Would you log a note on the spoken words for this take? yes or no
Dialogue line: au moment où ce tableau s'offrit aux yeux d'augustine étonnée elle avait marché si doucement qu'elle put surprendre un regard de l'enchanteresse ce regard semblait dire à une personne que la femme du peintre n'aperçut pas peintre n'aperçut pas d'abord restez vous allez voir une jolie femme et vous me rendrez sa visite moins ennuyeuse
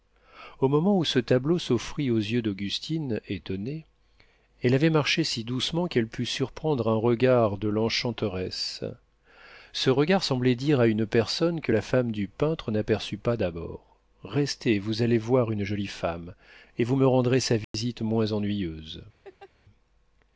yes